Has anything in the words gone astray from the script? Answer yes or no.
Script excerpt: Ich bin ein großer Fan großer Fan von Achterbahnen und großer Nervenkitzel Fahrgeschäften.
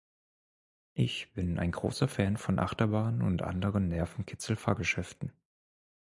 yes